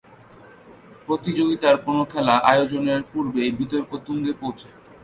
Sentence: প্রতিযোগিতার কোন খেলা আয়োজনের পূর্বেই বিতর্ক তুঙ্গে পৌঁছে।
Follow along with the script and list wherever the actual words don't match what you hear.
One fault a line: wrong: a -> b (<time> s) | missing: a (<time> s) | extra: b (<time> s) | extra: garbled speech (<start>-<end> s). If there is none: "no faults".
no faults